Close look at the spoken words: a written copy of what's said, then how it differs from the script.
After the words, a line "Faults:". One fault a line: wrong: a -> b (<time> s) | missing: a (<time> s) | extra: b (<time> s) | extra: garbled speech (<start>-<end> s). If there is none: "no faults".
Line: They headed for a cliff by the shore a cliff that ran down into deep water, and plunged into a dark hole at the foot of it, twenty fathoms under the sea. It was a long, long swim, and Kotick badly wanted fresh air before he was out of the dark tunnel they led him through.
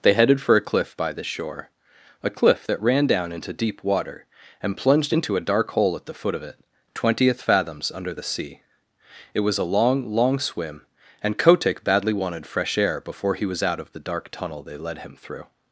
They headed for a cliff by the shore a cliff that ran down into deep water, and plunged into a dark hole at the foot of it, twentieth fathoms under the sea. It was a long, long swim, and Kotick badly wanted fresh air before he was out of the dark tunnel they led him through.
Faults:
wrong: twenty -> twentieth (6.9 s)